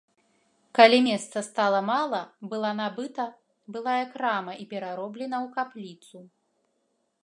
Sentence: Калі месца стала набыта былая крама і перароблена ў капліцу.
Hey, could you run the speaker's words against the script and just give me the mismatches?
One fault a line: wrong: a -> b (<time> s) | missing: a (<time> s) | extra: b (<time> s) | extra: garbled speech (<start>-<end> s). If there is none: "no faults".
extra: мала была (1.9 s)